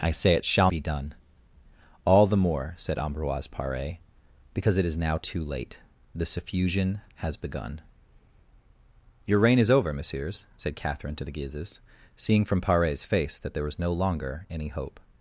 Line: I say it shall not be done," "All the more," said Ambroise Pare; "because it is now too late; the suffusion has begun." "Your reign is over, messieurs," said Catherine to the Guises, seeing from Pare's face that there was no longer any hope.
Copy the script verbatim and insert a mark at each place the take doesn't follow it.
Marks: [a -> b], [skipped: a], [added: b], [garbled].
I say it shall [skipped: not] be done," "All the more," said Ambroise Pare; "because it is now too late; the suffusion has begun." "Your reign is over, messieurs," said Catherine to the Guises, seeing from Pare's face that there was no longer any hope.